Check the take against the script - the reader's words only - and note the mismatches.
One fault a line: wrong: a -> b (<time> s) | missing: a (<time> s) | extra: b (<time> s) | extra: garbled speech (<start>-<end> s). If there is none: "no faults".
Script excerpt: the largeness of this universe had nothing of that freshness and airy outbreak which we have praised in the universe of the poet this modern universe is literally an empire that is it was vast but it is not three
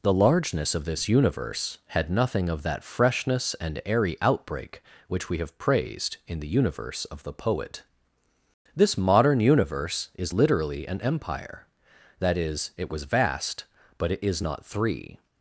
no faults